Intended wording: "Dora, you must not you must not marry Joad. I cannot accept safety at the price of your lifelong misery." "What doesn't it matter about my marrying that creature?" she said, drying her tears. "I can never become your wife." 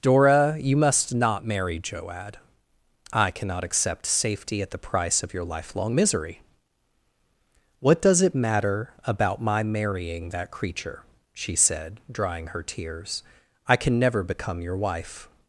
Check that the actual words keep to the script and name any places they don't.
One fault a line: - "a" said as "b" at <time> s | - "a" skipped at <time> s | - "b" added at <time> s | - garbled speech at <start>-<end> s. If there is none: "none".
- "you must not" skipped at 1.4 s
- "doesn't" said as "does" at 8.0 s